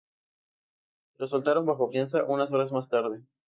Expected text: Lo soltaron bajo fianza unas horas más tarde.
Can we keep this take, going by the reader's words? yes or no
yes